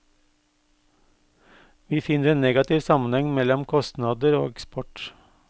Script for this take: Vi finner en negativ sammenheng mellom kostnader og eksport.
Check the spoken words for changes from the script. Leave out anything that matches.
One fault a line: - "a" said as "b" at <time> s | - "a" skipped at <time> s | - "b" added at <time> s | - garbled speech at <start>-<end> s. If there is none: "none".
none